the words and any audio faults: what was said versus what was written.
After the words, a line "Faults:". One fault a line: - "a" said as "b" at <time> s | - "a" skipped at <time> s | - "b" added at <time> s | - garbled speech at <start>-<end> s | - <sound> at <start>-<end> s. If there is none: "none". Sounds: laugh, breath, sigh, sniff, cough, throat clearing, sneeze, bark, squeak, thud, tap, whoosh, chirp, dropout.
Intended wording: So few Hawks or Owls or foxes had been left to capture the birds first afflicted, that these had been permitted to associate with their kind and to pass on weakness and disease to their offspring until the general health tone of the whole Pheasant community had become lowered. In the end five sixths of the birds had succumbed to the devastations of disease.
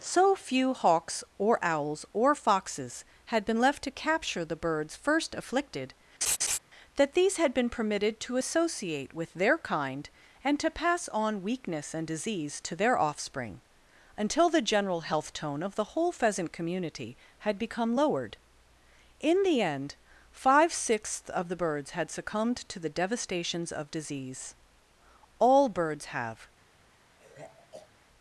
So few Hawks or Owls or foxes had been left to capture the birds first afflicted, that these had been permitted to associate with their kind and to pass on weakness and disease to their offspring until the general health tone of the whole Pheasant community had become lowered. In the end five sixths of the birds had succumbed to the devastations of disease. All birds have
Faults:
- laugh at 6.2-6.6 s
- "All birds have" added at 25.4 s
- sigh at 27.2-27.9 s